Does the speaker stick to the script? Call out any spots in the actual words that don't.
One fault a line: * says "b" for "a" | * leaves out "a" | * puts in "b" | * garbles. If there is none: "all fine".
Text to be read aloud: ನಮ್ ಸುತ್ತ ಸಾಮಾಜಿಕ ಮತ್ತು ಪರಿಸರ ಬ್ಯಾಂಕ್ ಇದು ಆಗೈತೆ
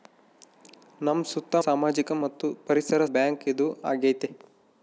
all fine